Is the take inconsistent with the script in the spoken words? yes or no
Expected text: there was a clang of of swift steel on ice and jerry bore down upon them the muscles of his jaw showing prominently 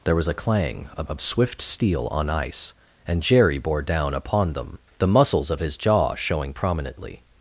no